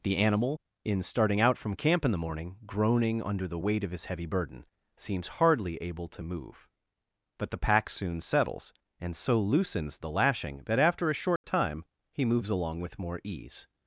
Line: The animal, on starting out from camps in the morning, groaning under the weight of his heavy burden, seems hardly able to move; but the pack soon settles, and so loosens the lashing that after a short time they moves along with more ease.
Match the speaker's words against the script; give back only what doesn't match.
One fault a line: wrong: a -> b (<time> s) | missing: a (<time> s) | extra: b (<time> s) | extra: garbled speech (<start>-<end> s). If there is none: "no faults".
wrong: on -> in (0.8 s)
wrong: camps -> camp (1.8 s)
wrong: they -> he (12.1 s)